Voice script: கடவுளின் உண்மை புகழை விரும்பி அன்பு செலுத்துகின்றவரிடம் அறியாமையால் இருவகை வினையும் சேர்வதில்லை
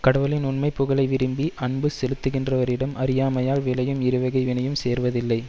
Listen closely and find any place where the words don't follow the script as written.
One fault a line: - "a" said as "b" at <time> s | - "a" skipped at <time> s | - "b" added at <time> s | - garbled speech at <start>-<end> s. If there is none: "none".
- "விளையும்" added at 3.6 s